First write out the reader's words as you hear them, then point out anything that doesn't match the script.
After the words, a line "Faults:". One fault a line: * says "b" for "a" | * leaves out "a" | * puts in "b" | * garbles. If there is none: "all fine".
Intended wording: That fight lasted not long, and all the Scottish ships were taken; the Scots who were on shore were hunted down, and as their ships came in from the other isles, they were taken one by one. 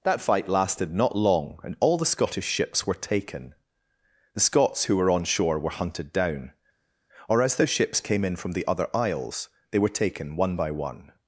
That fight lasted not long, and all the Scottish ships were taken; the Scots who were on shore were hunted down, or as their ships came in from the other isles, they were taken one by one.
Faults:
* says "or" for "and"